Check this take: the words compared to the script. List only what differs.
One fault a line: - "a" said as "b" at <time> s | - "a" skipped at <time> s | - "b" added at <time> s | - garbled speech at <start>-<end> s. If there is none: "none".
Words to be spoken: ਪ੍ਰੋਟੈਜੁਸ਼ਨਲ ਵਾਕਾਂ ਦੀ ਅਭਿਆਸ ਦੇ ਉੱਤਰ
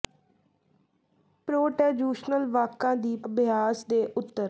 none